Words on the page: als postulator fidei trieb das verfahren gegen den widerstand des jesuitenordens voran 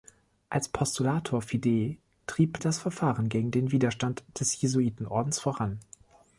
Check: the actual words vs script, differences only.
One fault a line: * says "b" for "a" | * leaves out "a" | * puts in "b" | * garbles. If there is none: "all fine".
all fine